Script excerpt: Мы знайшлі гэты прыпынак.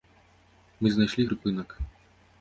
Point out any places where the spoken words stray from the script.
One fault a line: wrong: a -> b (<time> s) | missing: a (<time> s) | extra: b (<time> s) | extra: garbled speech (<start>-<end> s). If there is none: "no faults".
missing: гэты (1.3 s)